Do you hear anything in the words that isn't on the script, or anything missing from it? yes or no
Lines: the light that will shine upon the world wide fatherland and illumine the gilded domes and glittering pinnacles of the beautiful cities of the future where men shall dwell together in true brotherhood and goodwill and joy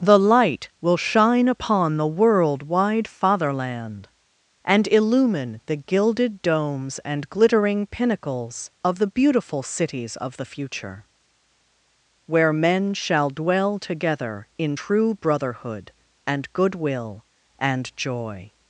yes